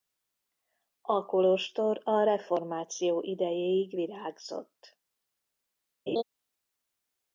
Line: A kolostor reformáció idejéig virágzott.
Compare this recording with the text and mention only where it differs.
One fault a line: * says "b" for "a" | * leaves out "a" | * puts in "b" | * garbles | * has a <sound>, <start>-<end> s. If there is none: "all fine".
* puts in "a"
* has a laugh, 6.1-6.2 s